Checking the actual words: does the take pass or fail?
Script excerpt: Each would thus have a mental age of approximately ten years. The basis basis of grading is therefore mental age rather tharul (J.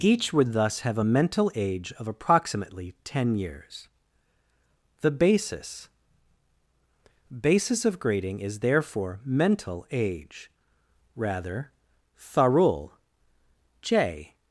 pass